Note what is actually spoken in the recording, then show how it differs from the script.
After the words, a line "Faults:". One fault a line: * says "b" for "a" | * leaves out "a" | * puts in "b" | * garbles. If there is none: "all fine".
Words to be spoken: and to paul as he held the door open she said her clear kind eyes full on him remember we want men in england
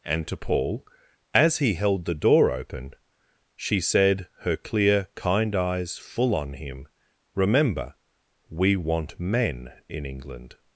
and to paul as he held the door open she said her clear kind eyes full on him remember we want men in england
Faults:
all fine